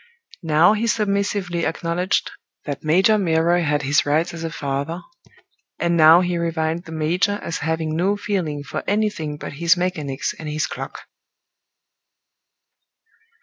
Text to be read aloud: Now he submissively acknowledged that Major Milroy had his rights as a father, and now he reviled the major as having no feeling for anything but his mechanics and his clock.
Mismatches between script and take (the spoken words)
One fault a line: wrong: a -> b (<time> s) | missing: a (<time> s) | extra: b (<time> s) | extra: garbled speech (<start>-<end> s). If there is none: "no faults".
no faults